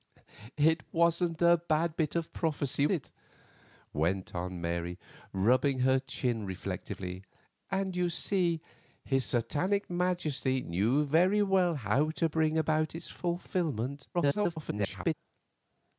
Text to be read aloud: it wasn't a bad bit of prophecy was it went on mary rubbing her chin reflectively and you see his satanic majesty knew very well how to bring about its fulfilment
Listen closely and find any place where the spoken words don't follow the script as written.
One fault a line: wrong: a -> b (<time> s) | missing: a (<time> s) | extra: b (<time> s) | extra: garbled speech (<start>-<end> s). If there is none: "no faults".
missing: was (2.9 s)
extra: garbled speech (14.1-15.1 s)